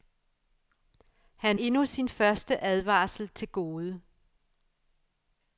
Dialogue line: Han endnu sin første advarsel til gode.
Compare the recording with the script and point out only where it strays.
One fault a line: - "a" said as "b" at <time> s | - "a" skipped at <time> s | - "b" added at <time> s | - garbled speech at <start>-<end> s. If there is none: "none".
none